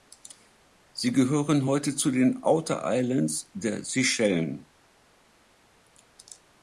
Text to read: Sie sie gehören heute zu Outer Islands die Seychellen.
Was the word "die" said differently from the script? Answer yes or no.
yes